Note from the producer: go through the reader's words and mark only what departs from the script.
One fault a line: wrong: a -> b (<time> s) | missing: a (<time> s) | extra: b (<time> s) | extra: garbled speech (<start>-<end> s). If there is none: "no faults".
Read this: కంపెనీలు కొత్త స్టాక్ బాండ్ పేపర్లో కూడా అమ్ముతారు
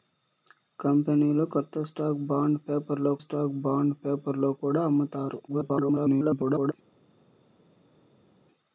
extra: స్టాక్ బాండ్ పేపర్లో (3.2 s)
extra: garbled speech (5.5-6.7 s)